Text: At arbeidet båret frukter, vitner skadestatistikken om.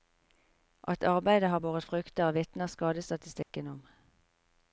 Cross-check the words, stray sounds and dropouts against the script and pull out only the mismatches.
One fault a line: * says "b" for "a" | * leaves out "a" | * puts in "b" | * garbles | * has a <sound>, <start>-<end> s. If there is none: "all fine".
* puts in "har"
* has a dropout, 3.4-3.5 s